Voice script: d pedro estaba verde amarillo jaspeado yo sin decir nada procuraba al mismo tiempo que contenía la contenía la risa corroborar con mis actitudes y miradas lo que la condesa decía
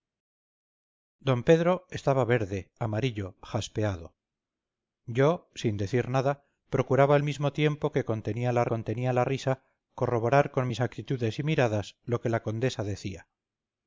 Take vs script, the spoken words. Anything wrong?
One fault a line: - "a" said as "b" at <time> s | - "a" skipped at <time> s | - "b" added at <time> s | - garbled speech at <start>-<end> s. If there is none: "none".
none